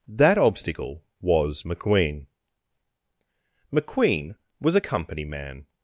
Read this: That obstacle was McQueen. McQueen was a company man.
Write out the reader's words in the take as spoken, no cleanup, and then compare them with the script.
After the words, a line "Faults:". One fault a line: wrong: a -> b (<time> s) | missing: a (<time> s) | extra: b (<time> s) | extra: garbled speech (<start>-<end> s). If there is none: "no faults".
That obstacle was McQueen. McQueen was a company man.
Faults:
no faults